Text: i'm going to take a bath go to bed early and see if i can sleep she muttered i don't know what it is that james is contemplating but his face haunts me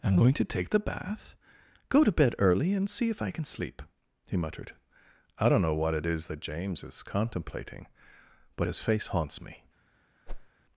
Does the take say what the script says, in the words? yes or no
no